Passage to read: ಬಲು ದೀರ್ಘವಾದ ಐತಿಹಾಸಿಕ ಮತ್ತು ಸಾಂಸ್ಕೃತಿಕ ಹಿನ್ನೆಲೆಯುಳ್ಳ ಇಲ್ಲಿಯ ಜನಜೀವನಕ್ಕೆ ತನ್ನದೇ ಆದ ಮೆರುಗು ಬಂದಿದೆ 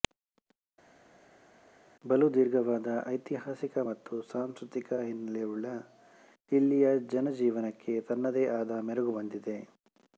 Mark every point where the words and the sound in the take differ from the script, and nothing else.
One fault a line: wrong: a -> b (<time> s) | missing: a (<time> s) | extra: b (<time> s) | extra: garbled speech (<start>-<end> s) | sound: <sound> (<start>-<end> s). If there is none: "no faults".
no faults